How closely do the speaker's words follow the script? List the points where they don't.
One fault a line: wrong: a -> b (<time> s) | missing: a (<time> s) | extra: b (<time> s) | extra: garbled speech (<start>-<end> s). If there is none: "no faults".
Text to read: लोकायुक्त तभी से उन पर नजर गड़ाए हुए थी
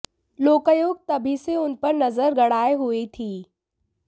no faults